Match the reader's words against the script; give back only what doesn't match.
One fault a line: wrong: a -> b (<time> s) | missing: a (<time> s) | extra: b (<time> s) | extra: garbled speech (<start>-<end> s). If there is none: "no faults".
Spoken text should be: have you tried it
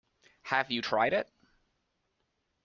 no faults